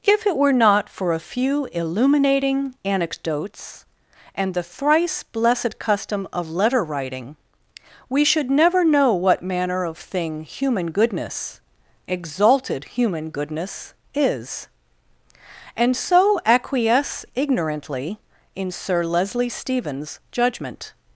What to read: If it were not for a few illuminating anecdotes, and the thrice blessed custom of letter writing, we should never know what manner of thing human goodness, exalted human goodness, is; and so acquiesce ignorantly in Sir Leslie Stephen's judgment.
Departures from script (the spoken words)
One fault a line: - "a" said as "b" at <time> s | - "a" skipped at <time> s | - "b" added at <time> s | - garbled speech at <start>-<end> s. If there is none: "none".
none